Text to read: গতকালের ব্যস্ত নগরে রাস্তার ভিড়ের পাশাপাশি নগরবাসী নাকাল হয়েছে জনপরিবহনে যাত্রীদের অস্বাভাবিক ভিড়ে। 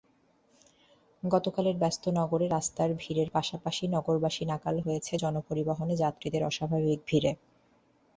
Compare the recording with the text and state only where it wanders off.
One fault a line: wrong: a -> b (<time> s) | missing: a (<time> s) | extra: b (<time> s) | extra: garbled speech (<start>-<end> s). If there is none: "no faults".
no faults